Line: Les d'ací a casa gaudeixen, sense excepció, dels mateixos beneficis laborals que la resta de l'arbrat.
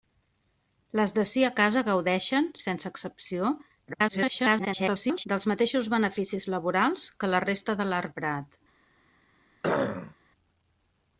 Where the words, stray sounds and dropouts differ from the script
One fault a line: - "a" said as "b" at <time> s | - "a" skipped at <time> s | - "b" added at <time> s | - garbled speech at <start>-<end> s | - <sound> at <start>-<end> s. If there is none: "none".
- garbled speech at 3.9-5.3 s
- throat clearing at 9.6-10.2 s